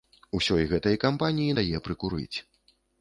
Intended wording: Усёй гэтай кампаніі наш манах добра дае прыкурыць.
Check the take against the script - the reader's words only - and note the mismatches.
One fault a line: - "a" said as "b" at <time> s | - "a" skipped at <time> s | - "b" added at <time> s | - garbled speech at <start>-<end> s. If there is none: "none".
- "наш манах добра" skipped at 1.6 s